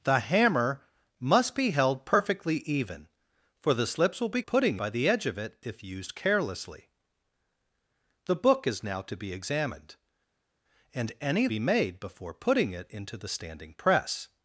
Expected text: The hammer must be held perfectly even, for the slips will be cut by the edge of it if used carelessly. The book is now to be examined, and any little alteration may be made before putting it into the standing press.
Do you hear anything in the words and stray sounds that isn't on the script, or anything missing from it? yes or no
yes